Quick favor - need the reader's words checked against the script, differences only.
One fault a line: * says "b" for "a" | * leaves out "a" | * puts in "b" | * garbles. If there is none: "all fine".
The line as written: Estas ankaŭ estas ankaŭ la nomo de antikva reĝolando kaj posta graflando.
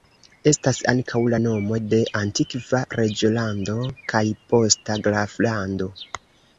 * leaves out "estas ankaŭ"